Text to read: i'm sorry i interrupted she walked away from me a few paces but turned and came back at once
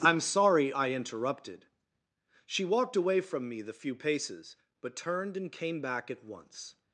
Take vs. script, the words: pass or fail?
fail